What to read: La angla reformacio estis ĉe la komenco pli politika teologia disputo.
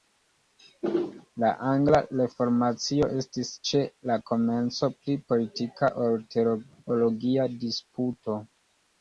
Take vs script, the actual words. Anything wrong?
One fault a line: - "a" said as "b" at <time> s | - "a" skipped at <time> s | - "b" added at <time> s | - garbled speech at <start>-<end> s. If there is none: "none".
- "ol" added at 6.1 s